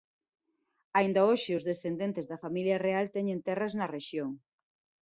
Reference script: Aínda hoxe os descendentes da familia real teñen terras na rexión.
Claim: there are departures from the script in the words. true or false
false